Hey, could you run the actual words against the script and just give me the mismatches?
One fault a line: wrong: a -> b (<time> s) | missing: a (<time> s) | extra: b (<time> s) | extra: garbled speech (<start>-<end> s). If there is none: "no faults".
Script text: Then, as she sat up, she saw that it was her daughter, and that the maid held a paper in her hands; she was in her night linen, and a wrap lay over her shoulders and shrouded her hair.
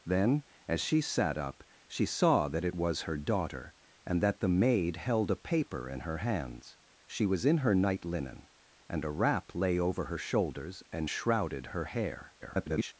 extra: garbled speech (12.4-12.9 s)